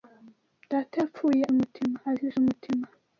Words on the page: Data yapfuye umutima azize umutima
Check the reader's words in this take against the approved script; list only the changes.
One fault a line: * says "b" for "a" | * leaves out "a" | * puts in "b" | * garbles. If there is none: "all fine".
all fine